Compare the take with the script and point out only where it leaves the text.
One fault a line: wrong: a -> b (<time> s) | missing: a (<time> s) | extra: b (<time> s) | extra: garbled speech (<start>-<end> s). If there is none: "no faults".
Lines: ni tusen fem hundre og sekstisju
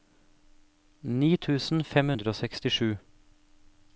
no faults